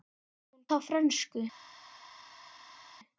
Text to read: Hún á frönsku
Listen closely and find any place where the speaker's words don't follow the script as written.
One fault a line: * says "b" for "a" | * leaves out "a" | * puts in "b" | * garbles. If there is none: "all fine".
all fine